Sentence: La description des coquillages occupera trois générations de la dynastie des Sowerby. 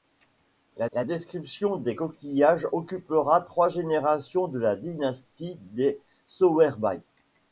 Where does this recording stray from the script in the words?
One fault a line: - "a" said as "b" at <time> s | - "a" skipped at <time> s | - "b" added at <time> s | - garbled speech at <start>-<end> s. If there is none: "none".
- "la" added at 0.9 s